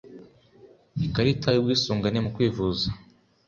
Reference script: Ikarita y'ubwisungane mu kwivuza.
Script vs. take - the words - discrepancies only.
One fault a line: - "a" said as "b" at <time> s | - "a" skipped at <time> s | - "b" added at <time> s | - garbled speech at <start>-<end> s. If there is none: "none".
none